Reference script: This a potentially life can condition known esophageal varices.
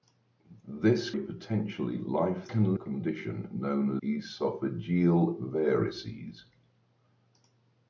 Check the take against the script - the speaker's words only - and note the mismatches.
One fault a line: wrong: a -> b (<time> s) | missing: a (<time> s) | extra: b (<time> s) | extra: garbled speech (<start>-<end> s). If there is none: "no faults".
no faults